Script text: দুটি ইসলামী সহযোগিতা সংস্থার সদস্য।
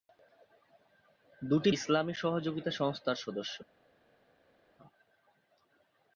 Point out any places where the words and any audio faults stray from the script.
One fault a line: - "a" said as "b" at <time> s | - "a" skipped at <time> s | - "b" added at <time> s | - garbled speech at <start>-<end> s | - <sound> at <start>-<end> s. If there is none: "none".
none